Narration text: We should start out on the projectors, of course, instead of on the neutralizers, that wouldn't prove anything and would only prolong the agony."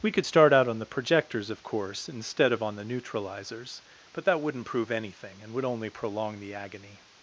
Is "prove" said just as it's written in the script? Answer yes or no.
yes